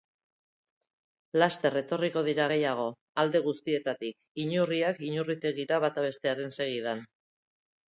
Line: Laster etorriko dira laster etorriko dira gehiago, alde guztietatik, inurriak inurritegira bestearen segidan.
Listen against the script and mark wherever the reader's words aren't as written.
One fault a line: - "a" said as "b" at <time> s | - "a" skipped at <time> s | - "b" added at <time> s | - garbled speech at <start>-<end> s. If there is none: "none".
- "laster etorriko dira" skipped at 2.5 s
- "bata" added at 5.9 s